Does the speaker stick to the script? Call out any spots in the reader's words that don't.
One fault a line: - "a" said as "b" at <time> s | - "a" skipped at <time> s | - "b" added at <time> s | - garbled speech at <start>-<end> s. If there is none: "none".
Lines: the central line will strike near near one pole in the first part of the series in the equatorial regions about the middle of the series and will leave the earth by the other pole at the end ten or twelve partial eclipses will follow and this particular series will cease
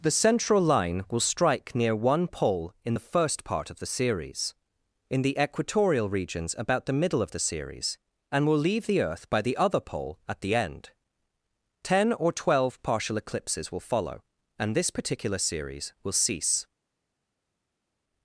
- "near" skipped at 1.9 s